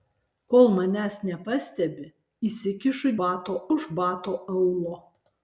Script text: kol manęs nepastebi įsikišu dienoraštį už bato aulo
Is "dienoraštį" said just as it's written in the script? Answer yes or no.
no